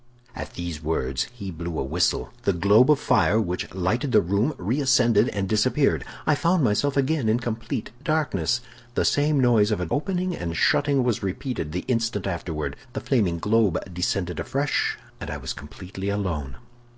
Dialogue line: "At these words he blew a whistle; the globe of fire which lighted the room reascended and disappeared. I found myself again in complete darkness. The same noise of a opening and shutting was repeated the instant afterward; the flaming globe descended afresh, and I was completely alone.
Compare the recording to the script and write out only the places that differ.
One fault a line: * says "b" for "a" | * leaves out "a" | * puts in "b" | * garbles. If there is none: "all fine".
all fine